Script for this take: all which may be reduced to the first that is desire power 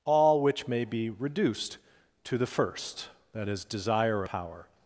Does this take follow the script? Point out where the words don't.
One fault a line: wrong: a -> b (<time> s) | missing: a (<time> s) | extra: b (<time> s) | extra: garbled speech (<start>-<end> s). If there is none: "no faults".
no faults